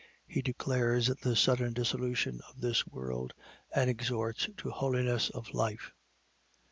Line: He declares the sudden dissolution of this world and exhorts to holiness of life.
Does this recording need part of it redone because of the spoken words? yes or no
no